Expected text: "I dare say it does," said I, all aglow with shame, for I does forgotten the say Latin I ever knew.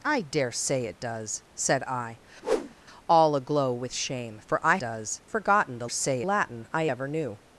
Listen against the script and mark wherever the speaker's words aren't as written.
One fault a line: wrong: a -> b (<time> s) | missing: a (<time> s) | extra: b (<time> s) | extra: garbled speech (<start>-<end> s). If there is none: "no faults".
no faults